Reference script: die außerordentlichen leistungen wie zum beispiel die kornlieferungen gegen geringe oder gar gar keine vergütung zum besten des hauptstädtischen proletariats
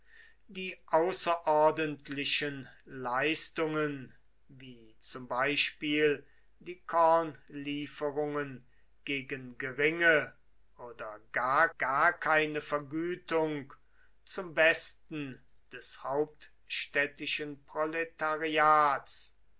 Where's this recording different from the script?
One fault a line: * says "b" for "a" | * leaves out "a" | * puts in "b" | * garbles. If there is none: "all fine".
all fine